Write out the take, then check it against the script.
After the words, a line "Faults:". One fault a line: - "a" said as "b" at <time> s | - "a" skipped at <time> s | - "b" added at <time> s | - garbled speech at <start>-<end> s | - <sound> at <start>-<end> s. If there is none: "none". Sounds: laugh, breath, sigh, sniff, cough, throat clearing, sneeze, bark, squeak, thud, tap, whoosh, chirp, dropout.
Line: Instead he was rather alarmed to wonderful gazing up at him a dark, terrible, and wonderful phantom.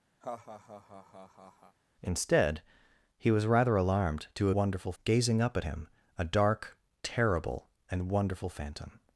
Instead he was rather alarmed to wonderful gazing up at him a dark, terrible, and wonderful phantom.
Faults:
- laugh at 0.2-1.8 s